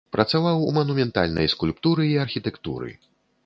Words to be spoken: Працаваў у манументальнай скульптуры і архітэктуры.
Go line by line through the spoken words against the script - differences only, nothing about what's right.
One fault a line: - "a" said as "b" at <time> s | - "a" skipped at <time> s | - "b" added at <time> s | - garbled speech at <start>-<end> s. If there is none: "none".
none